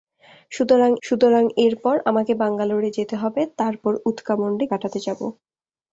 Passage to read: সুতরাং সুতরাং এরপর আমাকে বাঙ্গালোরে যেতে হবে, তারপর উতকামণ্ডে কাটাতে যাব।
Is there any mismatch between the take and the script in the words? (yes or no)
no